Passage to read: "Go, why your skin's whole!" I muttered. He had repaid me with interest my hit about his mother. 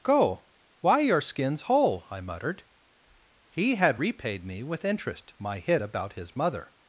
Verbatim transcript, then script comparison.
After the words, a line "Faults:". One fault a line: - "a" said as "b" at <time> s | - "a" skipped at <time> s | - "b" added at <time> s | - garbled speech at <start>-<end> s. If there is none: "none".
"Go, why your skin's whole!" I muttered. He had repaid me with interest my hit about his mother.
Faults:
none